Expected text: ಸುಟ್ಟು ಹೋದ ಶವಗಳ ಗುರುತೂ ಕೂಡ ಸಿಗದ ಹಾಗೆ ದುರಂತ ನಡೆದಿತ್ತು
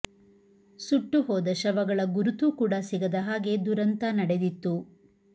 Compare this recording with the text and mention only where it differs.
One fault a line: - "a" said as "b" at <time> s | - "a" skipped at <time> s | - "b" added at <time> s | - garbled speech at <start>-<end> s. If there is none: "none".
none